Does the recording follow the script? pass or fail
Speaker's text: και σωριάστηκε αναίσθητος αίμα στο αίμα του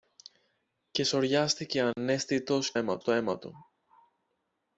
pass